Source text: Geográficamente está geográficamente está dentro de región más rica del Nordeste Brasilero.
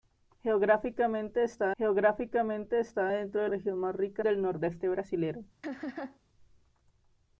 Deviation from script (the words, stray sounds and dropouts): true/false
true